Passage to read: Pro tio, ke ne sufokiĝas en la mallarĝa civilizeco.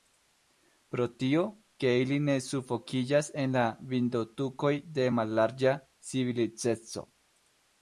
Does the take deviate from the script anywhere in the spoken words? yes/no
yes